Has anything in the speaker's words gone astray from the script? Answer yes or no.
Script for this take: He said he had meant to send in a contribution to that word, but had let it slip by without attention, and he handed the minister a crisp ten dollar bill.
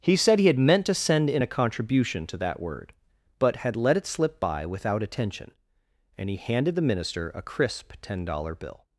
no